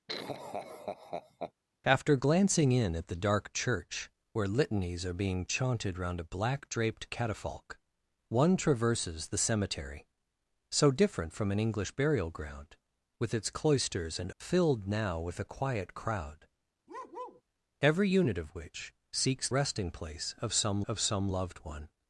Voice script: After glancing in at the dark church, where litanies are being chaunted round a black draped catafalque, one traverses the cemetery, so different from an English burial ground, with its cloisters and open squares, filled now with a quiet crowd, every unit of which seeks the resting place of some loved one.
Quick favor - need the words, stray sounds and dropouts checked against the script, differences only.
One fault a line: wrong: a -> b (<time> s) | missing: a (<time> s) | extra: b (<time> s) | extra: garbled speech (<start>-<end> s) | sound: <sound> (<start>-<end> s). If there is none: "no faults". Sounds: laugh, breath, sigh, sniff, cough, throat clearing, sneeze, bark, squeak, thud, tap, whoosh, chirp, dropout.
sound: laugh (0.1-1.5 s)
missing: open squares (14.3 s)
sound: bark (16.9-17.4 s)
missing: the (19.5 s)
extra: of some (20.8 s)